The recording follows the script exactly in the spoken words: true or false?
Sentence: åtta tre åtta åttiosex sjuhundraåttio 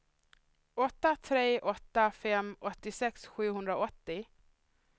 false